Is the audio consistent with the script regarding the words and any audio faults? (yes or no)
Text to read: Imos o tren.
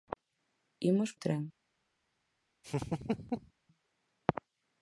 no